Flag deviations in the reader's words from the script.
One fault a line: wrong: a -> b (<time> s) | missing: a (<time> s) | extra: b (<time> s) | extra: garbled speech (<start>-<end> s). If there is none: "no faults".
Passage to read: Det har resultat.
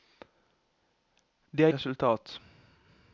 no faults